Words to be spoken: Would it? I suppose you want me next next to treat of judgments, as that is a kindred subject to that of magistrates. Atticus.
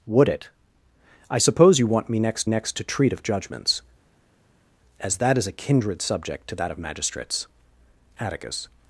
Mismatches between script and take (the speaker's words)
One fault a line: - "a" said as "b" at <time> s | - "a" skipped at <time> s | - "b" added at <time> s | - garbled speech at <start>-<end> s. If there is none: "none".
none